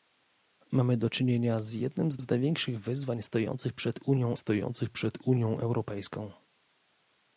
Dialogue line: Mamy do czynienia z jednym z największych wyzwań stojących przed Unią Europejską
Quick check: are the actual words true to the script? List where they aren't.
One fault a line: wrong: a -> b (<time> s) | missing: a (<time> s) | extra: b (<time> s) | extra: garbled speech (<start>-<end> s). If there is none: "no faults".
extra: z (2.2 s)
extra: stojących przed Unią (4.3 s)